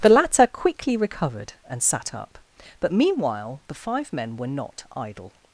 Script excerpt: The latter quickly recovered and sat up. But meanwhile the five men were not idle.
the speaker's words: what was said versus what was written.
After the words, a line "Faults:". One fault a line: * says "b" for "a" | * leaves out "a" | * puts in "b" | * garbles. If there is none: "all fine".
The latter quickly recovered and sat up. But meanwhile the five men were not idle.
Faults:
all fine